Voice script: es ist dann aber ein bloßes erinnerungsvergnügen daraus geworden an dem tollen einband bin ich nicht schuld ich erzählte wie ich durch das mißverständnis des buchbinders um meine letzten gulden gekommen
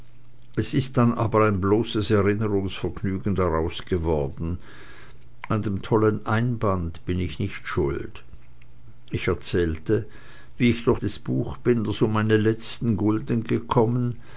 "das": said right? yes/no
no